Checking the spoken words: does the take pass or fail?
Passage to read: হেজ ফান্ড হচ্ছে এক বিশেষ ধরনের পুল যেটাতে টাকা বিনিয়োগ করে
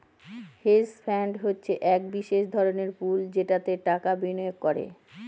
pass